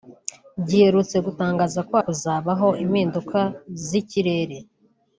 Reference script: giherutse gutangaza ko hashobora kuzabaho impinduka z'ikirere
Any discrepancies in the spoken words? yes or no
yes